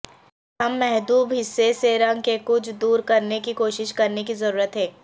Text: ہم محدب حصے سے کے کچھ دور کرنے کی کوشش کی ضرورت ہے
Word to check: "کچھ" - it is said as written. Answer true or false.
true